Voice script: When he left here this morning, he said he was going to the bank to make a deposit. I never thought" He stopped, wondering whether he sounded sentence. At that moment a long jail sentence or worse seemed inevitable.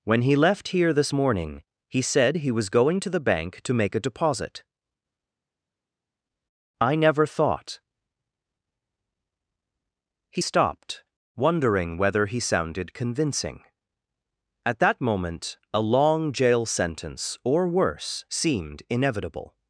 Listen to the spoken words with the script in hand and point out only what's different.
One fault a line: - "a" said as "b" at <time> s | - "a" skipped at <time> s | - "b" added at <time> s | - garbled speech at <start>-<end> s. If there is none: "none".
- "sentence" said as "convincing" at 12.9 s